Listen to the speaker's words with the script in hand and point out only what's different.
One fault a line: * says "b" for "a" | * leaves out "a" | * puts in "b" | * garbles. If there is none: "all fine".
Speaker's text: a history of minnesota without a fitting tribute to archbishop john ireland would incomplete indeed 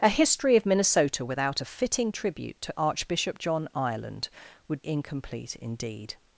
all fine